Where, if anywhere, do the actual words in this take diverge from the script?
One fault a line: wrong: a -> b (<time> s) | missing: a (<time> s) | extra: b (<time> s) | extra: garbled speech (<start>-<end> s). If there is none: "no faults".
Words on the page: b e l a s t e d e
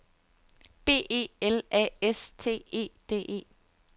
no faults